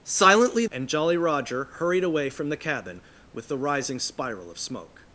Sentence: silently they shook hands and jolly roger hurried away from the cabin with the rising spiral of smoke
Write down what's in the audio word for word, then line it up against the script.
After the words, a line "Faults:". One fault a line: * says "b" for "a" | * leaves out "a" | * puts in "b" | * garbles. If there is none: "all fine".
silently and jolly roger hurried away from the cabin with the rising spiral of smoke
Faults:
* leaves out "they shook hands"